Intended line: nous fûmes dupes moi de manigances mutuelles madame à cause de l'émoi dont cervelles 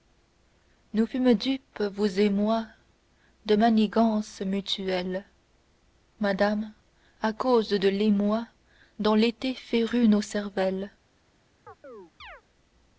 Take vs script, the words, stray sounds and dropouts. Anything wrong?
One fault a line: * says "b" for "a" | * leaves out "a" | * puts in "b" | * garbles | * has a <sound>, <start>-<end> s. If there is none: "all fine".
* puts in "vous et"
* puts in "l'été férut nos"
* has a chirp, 11.7-12.4 s